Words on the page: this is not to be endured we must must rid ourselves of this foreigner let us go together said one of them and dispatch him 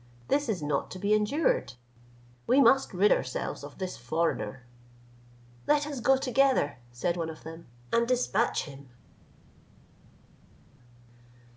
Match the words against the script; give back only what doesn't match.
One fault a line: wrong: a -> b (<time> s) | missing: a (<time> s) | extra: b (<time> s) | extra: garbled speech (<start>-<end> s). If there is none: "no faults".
missing: must (2.9 s)